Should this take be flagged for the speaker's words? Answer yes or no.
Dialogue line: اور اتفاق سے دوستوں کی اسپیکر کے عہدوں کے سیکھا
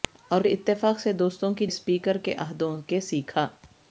no